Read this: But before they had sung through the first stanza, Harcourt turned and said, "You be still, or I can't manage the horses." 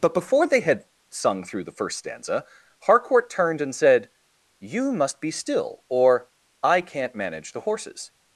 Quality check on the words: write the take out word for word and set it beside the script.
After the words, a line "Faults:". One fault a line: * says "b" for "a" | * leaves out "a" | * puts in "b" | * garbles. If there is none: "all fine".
But before they had sung through the first stanza, Harcourt turned and said, "You must be still, or I can't manage the horses."
Faults:
* puts in "must"